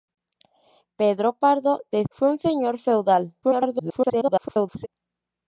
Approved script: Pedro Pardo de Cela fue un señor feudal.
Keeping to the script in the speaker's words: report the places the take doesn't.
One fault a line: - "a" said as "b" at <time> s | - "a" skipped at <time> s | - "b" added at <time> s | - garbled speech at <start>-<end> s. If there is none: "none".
- "Cela" skipped at 2.0 s
- garbled speech at 3.4-4.9 s